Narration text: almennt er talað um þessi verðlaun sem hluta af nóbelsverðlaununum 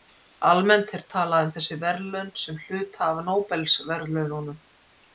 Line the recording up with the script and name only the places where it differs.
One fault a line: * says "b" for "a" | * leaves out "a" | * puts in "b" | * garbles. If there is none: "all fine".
all fine